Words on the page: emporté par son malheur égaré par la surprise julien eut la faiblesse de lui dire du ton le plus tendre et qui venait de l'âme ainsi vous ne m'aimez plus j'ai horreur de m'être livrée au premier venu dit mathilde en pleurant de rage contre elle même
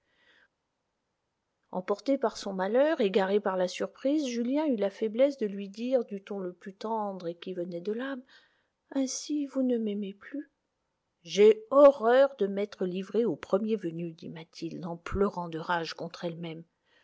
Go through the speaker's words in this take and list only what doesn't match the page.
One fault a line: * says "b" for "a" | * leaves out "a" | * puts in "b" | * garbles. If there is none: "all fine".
all fine